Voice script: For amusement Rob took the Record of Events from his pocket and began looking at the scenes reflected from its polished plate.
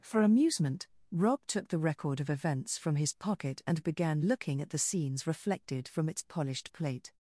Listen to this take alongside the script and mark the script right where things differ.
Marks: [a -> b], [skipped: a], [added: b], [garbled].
For amusement Rob took the Record of Events from his pocket and began looking at the scenes reflected from its polished plate.